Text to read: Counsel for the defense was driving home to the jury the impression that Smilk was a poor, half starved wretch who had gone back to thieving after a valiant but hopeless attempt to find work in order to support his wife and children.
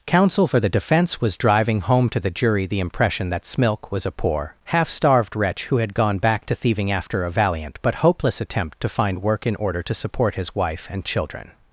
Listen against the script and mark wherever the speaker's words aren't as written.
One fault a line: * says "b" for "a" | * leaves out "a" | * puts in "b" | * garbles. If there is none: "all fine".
all fine